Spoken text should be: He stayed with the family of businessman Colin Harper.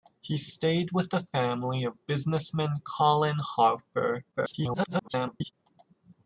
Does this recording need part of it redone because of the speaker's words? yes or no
yes